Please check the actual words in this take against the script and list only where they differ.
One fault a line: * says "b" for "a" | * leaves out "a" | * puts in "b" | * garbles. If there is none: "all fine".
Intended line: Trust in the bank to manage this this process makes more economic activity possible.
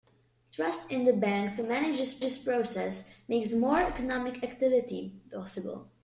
all fine